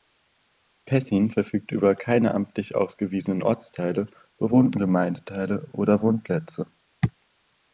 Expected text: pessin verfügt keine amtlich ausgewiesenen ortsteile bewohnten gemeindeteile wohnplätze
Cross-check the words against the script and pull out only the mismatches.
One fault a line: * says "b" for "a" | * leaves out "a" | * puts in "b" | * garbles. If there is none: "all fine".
* puts in "über"
* puts in "oder"